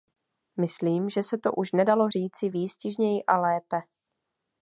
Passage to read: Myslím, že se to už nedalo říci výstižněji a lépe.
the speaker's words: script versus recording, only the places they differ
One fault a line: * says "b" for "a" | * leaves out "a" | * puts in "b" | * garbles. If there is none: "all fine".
all fine